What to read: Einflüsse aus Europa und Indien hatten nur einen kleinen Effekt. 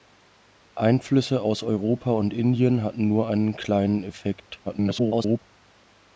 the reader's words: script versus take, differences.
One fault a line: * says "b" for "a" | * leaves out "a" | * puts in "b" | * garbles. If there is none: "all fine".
* garbles